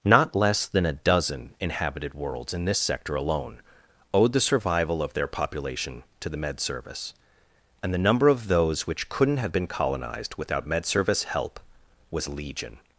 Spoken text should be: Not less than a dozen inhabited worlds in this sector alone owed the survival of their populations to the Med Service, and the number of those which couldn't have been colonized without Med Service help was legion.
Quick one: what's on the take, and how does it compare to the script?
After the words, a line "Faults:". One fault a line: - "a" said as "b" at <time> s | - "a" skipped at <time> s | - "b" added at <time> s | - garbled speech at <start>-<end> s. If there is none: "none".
Not less than a dozen inhabited worlds in this sector alone owed the survival of their population to the Med Service, and the number of those which couldn't have been colonized without Med Service help was legion.
Faults:
- "populations" said as "population" at 5.3 s